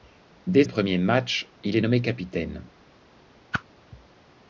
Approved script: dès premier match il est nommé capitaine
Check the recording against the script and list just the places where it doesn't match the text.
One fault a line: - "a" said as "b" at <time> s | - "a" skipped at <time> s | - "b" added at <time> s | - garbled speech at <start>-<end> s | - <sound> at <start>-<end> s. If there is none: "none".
- whoosh at 3.5-3.6 s